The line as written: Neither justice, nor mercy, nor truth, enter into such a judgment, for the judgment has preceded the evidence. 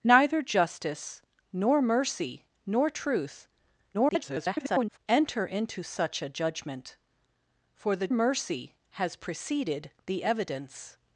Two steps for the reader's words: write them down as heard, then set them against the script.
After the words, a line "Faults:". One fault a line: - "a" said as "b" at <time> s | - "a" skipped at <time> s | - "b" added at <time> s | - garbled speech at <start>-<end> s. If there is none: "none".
Neither justice, nor mercy, nor truth, [garbled] enter into such a judgment, for the mercy has preceded the evidence.
Faults:
- garbled speech at 3.9-5.0 s
- "judgment" said as "mercy" at 8.1 s